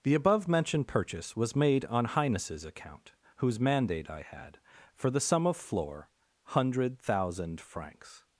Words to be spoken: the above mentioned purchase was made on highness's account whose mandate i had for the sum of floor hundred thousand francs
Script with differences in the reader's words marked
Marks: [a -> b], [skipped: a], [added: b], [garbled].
the above mentioned purchase was made on highness's account whose mandate i had for the sum of floor hundred thousand francs